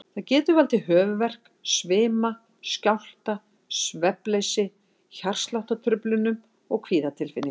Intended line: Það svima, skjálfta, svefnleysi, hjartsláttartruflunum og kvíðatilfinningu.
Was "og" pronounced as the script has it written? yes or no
yes